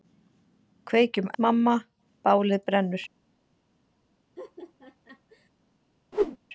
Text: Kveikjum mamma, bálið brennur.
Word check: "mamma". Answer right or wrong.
right